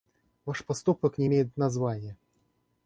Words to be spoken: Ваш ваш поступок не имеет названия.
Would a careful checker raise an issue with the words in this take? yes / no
yes